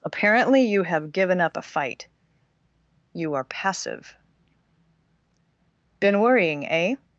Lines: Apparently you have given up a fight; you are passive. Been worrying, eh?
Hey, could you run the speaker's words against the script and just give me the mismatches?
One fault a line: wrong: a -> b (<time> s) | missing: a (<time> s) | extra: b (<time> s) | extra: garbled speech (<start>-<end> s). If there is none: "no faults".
no faults